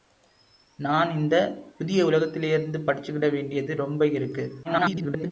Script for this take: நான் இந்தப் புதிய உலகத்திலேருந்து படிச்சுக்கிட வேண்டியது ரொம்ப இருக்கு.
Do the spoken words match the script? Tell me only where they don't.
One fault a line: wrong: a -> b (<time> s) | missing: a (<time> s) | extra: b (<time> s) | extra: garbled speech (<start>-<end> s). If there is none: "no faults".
extra: garbled speech (4.6-5.3 s)